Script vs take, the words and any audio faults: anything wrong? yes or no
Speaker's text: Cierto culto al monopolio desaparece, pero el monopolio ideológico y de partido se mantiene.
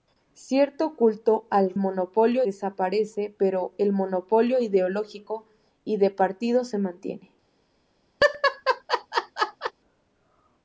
yes